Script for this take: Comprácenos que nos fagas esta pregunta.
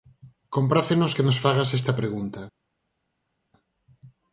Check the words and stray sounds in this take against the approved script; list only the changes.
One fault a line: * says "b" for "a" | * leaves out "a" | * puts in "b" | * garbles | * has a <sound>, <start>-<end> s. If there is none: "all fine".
all fine